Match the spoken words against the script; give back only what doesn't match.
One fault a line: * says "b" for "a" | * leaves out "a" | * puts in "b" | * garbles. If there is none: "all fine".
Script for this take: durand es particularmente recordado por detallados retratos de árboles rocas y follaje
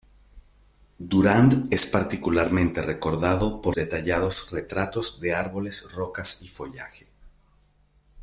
all fine